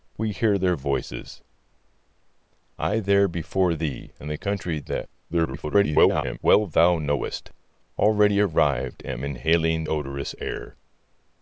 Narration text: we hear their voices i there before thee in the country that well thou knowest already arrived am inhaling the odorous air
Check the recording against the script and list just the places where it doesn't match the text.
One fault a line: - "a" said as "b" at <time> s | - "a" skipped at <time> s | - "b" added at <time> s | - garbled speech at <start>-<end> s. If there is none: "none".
- garbled speech at 5.3-6.4 s
- "the" skipped at 9.9 s